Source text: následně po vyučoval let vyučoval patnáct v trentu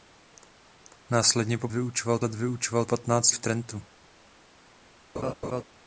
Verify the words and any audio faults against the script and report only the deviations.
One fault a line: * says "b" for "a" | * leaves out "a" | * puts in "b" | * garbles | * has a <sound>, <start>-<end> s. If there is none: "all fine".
* has a laugh, 5.1-5.6 s